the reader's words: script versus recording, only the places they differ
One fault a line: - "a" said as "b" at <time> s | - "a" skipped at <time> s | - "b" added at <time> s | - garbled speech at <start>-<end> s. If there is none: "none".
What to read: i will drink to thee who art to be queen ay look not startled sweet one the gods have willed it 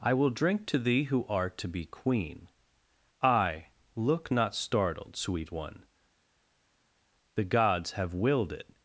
none